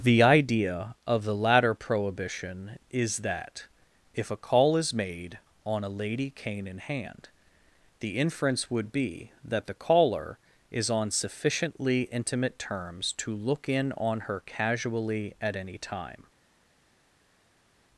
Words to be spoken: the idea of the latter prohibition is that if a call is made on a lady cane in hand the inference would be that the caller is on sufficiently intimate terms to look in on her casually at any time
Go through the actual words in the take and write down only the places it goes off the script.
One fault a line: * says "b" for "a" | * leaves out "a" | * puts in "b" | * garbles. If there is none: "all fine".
all fine